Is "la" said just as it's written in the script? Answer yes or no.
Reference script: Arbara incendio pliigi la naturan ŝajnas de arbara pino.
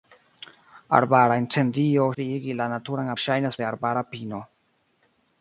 yes